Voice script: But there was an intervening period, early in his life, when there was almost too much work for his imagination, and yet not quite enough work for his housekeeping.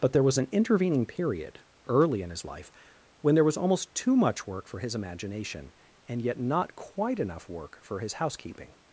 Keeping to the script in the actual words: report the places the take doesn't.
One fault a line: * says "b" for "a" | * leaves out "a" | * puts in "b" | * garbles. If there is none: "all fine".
all fine